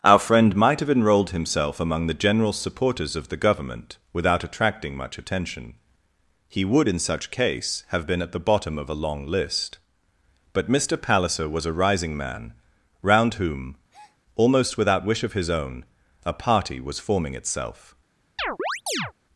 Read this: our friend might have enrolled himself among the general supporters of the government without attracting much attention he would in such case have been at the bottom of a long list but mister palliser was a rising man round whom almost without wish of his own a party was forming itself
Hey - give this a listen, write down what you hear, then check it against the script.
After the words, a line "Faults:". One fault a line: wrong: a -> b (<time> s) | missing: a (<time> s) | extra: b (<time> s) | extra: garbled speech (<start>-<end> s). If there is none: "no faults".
our friend might have enrolled himself among the general supporters of the government without attracting much attention he would in such case have been at the bottom of a long list but mister palliser was a rising man round whom almost without wish of his own a party was forming itself
Faults:
no faults